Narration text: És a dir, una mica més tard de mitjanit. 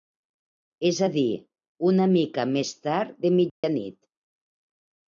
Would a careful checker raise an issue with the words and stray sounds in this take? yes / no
yes